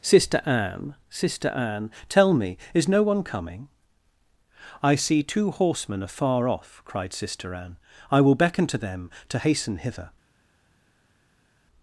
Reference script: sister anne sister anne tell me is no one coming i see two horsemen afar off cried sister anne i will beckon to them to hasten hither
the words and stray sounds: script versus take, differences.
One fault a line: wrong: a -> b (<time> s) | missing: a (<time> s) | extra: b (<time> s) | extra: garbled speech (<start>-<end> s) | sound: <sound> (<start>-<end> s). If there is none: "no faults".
no faults